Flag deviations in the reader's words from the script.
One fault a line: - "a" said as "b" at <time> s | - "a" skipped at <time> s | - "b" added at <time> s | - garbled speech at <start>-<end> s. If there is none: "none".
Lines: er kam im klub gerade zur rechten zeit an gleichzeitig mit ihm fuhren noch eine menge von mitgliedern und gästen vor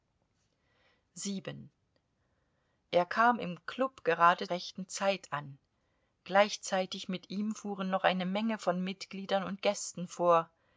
- "zur" skipped at 4.5 s